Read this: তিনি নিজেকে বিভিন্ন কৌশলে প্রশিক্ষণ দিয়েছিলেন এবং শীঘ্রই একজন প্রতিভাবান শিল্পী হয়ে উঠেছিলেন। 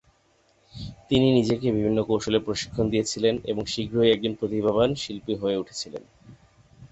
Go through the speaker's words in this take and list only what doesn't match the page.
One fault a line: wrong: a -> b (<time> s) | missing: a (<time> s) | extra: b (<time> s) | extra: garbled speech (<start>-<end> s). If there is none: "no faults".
no faults